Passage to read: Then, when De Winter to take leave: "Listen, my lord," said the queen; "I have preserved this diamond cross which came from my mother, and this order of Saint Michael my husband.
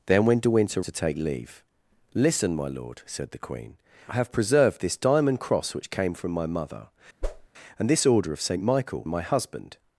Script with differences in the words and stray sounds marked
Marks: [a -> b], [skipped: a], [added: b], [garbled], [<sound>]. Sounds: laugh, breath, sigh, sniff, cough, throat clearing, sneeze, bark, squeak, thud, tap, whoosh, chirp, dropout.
Then, when De Winter to take leave: "Listen, my lord," said the queen; "I have preserved this diamond cross which came from my mother, [whoosh] and this order of Saint Michael my husband.